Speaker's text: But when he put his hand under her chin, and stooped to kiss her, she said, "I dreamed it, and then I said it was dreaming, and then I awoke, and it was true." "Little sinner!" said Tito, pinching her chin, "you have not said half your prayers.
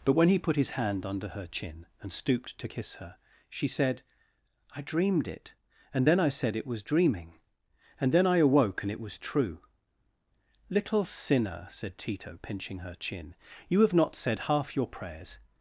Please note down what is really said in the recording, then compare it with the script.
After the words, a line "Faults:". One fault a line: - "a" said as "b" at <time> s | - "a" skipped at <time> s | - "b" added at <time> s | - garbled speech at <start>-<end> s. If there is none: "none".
But when he put his hand under her chin, and stooped to kiss her, she said, "I dreamed it, and then I said it was dreaming, and then I awoke, and it was true." "Little sinner!" said Tito, pinching her chin, "you have not said half your prayers.
Faults:
none